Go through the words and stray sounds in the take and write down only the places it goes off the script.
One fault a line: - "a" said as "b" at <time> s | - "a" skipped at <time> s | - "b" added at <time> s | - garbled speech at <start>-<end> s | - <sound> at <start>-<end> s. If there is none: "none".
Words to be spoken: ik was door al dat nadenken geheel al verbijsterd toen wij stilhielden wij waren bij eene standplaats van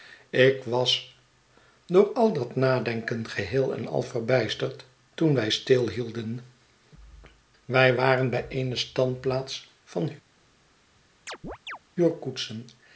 - "en" added at 3.8 s
- chirp at 11.3-11.8 s